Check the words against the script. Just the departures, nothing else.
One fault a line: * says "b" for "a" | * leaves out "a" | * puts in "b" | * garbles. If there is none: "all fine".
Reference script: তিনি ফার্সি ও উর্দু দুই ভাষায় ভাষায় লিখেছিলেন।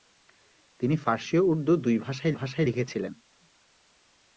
all fine